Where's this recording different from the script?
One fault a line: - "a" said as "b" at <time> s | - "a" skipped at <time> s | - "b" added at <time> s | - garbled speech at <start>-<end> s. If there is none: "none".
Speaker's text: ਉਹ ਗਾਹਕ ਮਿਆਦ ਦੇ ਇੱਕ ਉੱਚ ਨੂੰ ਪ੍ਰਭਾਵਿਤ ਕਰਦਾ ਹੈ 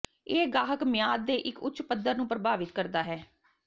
- "ਉਹ" said as "ਇਹ" at 0.3 s
- "ਪੱਧਰ" added at 1.8 s